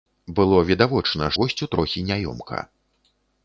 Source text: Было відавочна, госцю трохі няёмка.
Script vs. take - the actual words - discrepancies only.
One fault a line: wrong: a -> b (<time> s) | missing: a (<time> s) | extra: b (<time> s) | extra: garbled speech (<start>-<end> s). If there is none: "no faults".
no faults